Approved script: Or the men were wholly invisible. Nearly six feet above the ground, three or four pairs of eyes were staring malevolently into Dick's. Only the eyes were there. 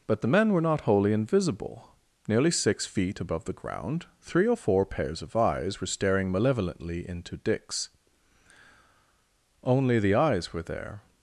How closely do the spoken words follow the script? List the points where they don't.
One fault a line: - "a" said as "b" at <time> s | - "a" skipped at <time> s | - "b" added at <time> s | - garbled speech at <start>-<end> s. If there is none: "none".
- "Or" said as "But" at 0.1 s
- "not" added at 0.6 s